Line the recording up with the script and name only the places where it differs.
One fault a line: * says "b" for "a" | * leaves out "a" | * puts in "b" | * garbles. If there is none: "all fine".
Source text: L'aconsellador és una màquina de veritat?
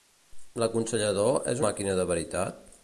* leaves out "una"